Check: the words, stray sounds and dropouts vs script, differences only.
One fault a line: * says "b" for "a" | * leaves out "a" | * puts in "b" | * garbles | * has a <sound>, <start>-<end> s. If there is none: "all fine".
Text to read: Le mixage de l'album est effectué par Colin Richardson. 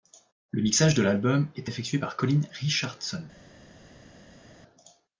all fine